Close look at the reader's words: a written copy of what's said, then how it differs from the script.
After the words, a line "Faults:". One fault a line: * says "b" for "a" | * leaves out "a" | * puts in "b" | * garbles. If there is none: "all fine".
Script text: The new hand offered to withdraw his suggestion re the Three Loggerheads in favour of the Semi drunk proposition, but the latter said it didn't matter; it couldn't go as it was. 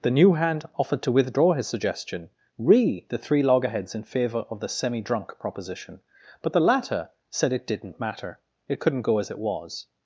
The new hand offered to withdraw his suggestion re the Three Loggerheads in favour of the Semi drunk proposition, but the latter said it didn't matter; it couldn't go as it was.
Faults:
all fine